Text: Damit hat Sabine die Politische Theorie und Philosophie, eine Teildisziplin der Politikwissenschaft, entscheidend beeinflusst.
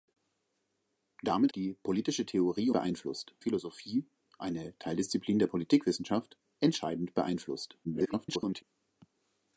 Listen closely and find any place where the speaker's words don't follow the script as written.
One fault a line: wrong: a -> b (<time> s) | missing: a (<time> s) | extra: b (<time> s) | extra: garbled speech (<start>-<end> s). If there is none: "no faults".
missing: hat Sabine (1.5 s)
wrong: und -> beeinflusst (2.7 s)
extra: garbled speech (7.8-8.6 s)